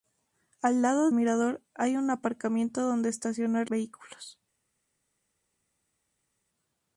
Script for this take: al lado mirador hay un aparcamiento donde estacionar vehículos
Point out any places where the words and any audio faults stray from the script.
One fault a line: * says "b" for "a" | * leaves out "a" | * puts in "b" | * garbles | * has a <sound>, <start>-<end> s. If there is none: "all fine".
all fine